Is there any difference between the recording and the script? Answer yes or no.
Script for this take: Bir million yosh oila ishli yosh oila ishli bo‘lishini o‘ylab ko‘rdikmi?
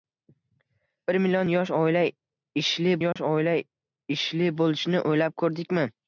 no